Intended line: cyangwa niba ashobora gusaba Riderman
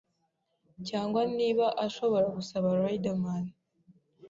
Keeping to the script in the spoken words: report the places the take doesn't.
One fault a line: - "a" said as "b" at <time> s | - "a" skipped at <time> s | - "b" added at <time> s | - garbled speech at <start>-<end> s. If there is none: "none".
none